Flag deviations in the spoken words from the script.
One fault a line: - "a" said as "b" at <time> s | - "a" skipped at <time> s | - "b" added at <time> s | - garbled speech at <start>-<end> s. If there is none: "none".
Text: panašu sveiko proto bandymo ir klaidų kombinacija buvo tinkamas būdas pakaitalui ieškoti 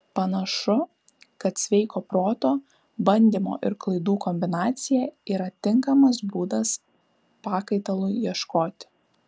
- "kad" added at 1.4 s
- "buvo" said as "yra" at 5.3 s